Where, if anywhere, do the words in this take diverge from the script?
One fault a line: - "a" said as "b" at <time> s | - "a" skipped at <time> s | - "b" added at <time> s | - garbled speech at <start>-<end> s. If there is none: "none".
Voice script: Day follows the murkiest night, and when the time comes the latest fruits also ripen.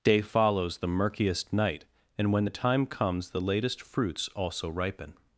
none